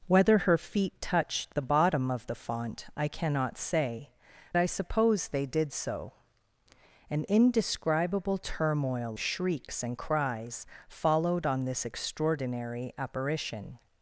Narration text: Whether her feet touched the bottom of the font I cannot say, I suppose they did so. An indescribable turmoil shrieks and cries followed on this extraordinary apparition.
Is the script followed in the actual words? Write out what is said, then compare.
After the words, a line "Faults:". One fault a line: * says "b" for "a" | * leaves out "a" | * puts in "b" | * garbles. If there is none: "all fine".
Whether her feet touched the bottom of the font I cannot say, I suppose they did so. An indescribable turmoil shrieks and cries followed on this extraordinary apparition.
Faults:
all fine